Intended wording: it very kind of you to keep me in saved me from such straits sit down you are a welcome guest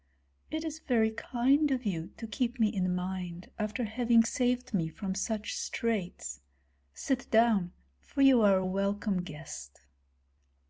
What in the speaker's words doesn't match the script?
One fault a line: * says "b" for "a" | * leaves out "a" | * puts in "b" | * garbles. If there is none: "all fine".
* puts in "is"
* puts in "mind after having"
* puts in "for"